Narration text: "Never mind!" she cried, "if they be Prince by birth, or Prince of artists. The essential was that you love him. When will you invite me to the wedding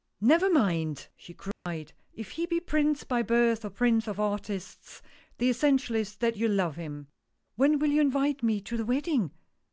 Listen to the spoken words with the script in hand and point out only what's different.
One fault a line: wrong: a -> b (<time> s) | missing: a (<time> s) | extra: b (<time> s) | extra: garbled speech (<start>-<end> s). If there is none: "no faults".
wrong: they -> he (2.3 s)
wrong: was -> is (6.0 s)